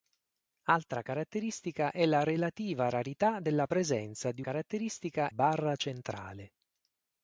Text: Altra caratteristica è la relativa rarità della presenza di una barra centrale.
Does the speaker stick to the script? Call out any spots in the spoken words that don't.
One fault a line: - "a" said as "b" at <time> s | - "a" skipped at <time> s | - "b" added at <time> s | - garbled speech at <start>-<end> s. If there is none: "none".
- "una" said as "caratteristica" at 4.4 s